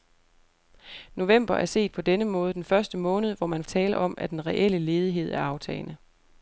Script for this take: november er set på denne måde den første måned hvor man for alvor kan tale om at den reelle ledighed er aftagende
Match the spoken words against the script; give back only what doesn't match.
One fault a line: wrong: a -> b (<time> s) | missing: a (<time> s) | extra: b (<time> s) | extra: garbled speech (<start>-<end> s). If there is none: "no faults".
missing: for alvor kan (3.6 s)